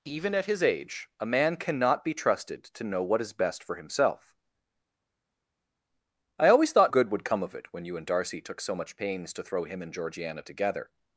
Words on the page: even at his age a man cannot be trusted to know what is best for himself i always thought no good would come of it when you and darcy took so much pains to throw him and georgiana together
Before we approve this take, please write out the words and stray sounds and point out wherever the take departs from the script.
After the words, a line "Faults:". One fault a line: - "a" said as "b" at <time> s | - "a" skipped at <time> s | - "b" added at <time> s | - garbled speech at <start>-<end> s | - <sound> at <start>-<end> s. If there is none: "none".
even at his age a man cannot be trusted to know what is best for himself i always thought good would come of it when you and darcy took so much pains to throw him and georgiana together
Faults:
- "no" skipped at 6.9 s